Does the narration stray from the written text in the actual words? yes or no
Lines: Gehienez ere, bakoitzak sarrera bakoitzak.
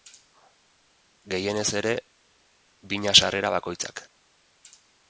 yes